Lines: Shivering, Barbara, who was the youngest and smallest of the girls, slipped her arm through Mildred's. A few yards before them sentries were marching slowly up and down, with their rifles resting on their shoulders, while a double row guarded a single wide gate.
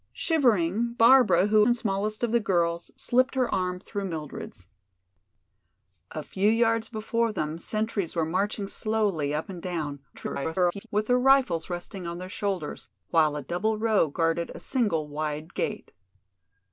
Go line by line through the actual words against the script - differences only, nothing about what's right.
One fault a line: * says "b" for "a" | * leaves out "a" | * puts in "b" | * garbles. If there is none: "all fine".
* leaves out "was the youngest"
* garbles